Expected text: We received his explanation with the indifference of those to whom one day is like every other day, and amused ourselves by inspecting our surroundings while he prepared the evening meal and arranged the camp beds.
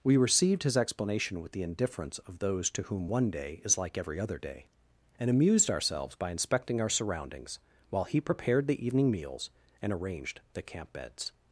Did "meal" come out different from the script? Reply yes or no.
yes